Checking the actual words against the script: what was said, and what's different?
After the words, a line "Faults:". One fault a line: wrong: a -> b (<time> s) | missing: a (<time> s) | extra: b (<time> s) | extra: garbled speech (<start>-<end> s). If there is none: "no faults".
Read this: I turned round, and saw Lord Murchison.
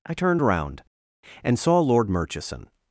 I turned round, and saw Lord Murchison.
Faults:
no faults